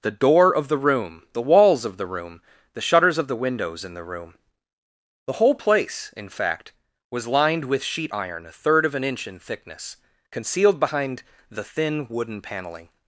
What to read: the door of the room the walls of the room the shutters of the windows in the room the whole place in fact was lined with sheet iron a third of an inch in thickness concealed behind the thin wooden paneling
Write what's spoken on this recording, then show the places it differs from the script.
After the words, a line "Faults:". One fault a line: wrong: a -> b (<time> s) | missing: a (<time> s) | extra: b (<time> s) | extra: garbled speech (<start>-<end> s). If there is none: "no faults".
the door of the room the walls of the room the shutters of the windows in the room the whole place in fact was lined with sheet iron a third of an inch in thickness concealed behind the thin wooden paneling
Faults:
no faults